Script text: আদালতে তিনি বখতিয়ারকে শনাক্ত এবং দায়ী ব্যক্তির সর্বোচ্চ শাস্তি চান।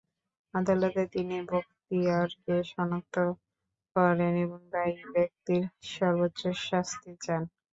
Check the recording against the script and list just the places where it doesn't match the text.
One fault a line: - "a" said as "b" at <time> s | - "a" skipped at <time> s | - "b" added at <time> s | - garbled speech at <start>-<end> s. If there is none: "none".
- "করেন" added at 4.0 s